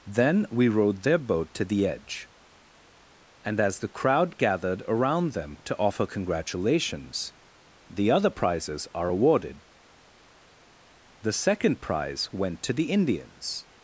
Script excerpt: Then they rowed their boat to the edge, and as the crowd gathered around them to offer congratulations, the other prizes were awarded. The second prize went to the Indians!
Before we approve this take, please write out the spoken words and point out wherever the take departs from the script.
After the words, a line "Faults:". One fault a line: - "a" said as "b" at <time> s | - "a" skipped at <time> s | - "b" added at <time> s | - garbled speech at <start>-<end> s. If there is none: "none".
Then we rowed their boat to the edge, and as the crowd gathered around them to offer congratulations, the other prizes are awarded. The second prize went to the Indians!
Faults:
- "they" said as "we" at 0.5 s
- "were" said as "are" at 8.9 s